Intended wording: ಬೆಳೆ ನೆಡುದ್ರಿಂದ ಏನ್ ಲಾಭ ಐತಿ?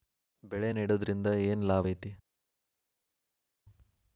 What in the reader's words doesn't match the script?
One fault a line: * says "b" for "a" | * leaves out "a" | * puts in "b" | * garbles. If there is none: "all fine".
all fine